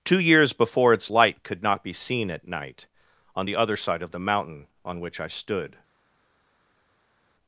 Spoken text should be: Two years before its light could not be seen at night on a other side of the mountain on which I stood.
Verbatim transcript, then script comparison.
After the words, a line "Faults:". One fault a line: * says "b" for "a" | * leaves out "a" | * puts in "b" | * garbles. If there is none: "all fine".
Two years before its light could not be seen at night on the other side of the mountain on which I stood.
Faults:
* says "the" for "a"